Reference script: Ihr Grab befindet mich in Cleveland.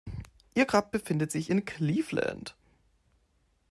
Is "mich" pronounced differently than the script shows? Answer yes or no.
yes